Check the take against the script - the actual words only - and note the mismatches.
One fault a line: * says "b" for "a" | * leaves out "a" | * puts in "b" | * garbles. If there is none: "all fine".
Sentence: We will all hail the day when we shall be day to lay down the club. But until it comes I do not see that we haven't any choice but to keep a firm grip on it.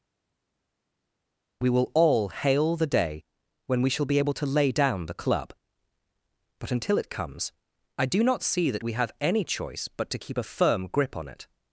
* says "able" for "day"
* says "have" for "haven't"